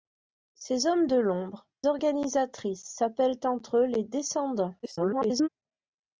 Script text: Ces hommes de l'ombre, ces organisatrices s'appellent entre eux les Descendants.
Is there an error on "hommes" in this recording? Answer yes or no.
no